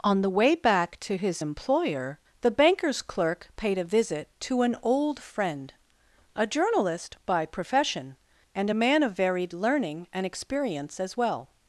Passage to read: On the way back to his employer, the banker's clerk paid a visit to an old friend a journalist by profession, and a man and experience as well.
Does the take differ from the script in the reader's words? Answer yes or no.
yes